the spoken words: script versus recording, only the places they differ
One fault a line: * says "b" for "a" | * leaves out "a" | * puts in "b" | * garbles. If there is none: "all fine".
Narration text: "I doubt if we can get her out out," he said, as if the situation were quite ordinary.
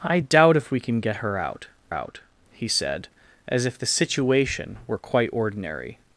all fine